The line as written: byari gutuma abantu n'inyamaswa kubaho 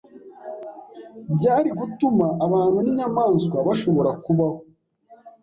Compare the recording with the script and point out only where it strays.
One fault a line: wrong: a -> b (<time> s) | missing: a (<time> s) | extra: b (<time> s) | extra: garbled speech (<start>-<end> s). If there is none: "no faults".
extra: bashobora (3.7 s)